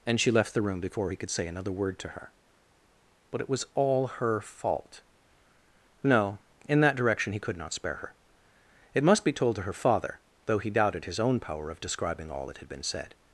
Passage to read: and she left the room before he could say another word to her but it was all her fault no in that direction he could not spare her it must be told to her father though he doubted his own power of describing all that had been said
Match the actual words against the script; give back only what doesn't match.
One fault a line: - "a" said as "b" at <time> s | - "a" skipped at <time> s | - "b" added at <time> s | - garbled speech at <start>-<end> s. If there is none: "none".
none